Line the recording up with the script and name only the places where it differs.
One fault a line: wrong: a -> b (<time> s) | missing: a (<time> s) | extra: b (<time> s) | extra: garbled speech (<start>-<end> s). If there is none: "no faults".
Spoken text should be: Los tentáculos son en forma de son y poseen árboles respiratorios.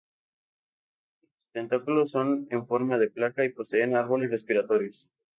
wrong: son -> placa (3.1 s)